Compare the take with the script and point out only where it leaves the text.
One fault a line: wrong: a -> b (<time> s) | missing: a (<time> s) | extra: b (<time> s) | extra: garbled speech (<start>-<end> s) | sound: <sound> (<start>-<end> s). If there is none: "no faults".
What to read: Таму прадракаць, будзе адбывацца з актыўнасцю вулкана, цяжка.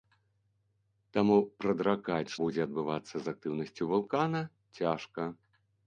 no faults